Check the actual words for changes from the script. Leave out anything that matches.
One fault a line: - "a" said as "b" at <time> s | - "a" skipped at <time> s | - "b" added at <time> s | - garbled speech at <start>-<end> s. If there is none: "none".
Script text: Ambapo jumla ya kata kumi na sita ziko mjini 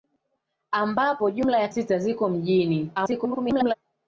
- "kata kumi na" skipped at 1.7 s
- garbled speech at 2.9-3.7 s